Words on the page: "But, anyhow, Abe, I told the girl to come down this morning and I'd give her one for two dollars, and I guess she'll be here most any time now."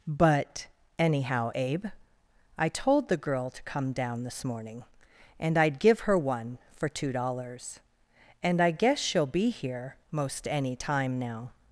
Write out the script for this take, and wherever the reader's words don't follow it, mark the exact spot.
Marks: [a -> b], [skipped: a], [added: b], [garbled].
"But, anyhow, Abe, I told the girl to come down this morning and I'd give her one for two dollars, and I guess she'll be here most any time now."